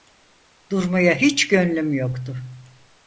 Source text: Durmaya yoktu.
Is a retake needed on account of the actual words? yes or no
yes